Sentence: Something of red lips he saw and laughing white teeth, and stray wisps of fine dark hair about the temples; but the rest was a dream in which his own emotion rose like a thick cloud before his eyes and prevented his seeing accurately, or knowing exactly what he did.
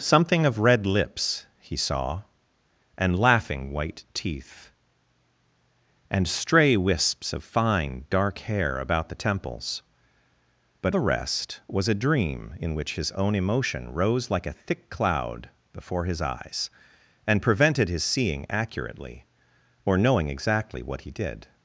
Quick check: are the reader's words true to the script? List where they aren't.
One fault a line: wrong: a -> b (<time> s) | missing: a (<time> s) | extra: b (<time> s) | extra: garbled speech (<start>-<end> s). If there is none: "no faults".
no faults